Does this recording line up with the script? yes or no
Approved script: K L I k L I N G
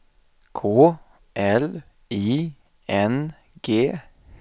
no